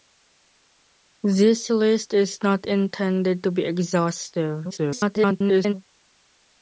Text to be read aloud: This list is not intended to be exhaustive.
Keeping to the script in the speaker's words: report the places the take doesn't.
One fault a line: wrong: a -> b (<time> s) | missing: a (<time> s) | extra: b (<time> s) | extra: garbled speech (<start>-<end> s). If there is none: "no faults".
extra: garbled speech (4.7-5.7 s)